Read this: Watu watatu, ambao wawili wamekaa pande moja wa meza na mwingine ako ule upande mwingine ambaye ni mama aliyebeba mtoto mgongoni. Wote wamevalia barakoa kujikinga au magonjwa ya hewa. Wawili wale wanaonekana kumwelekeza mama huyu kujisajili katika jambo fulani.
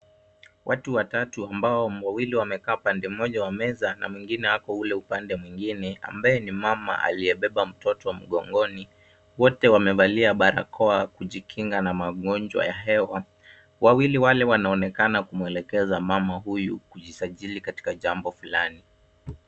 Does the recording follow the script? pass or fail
fail